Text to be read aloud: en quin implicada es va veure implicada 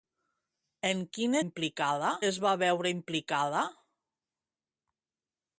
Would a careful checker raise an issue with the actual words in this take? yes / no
no